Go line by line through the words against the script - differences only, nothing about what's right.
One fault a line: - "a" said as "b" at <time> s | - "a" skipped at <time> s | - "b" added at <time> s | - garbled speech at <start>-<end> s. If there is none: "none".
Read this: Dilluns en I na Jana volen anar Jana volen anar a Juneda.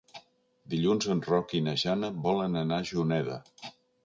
- "Roc" added at 1.3 s
- "Jana volen anar" skipped at 2.8 s